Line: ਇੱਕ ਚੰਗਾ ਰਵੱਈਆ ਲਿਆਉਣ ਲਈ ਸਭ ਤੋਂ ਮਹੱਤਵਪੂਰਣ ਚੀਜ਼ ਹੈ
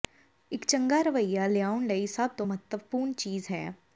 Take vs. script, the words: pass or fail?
pass